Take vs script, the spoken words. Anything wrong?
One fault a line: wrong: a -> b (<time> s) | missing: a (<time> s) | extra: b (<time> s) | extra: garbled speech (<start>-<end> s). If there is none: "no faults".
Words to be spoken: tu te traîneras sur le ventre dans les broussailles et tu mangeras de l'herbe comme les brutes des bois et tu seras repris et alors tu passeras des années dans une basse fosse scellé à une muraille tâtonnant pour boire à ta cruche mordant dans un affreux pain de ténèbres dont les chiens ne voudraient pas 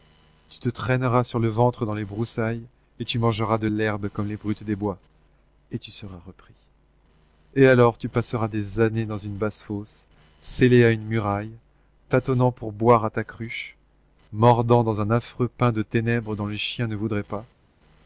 no faults